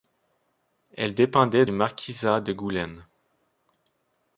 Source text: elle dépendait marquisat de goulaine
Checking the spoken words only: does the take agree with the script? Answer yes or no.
yes